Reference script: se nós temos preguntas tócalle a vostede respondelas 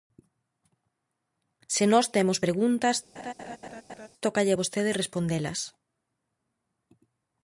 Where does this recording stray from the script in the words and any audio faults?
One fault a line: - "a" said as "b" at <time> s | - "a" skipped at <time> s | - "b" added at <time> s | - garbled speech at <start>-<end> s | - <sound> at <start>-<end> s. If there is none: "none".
- laugh at 3.2-4.1 s